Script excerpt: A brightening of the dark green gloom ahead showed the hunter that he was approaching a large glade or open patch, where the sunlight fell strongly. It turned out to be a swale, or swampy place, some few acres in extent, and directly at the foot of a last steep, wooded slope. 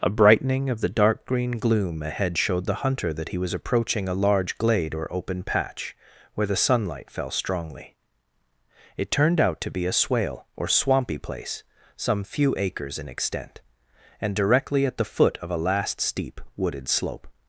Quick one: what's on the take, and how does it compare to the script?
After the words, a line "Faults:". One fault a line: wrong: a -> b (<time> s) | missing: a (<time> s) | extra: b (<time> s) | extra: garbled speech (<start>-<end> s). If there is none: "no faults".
A brightening of the dark green gloom ahead showed the hunter that he was approaching a large glade or open patch, where the sunlight fell strongly. It turned out to be a swale, or swampy place, some few acres in extent, and directly at the foot of a last steep, wooded slope.
Faults:
no faults